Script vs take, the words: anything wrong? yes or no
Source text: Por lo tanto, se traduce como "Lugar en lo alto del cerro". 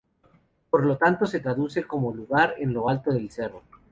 no